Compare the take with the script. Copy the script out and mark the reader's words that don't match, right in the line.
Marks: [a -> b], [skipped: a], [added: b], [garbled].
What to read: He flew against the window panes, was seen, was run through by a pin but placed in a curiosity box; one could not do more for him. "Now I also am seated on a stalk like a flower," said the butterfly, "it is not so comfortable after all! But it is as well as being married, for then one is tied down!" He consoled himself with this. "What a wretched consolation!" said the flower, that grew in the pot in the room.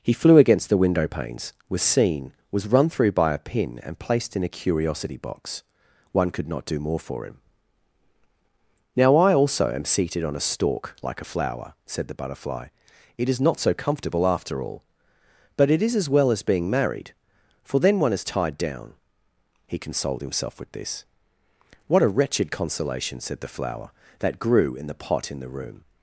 He flew against the window panes, was seen, was run through by a pin [but -> and] placed in a curiosity box; one could not do more for him. "Now I also am seated on a stalk like a flower," said the butterfly, "it is not so comfortable after all! But it is as well as being married, for then one is tied down!" He consoled himself with this. "What a wretched consolation!" said the flower, that grew in the pot in the room.